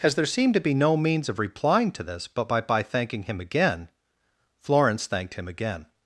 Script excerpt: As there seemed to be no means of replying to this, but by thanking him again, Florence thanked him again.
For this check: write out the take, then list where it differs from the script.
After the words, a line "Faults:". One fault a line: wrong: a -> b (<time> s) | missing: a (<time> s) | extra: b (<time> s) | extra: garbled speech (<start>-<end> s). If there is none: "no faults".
As there seemed to be no means of replying to this, but by by thanking him again, Florence thanked him again.
Faults:
extra: by (2.6 s)